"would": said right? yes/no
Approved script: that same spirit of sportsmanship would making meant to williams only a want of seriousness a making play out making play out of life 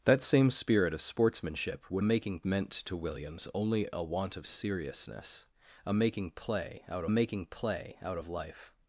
yes